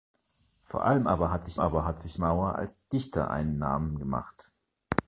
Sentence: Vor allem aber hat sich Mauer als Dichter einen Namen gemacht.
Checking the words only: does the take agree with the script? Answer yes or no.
no